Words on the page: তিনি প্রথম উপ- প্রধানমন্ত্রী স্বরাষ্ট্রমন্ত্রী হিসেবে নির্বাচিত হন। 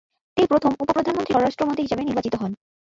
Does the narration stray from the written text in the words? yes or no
no